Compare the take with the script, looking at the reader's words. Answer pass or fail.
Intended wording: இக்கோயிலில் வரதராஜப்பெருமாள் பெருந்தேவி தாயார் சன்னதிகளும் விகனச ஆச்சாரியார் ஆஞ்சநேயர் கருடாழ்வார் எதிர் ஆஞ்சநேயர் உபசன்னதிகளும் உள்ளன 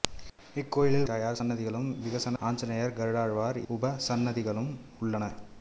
fail